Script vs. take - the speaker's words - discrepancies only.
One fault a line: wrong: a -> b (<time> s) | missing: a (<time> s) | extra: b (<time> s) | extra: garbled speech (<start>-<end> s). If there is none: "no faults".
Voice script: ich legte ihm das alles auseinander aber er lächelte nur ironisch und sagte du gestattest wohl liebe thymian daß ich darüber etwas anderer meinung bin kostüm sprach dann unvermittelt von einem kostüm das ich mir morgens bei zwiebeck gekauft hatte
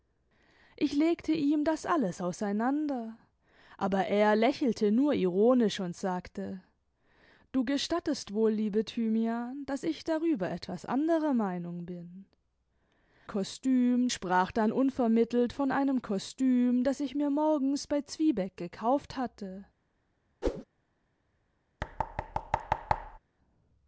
no faults